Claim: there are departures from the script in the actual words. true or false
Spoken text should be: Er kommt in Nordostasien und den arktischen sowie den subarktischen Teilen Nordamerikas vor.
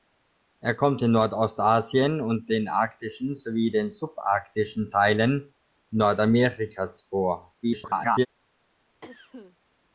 true